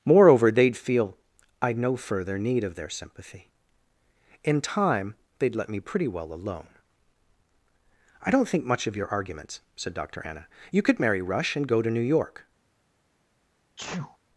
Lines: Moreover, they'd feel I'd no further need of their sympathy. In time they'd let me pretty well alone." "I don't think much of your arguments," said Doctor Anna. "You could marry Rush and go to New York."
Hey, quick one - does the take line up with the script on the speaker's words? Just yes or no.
yes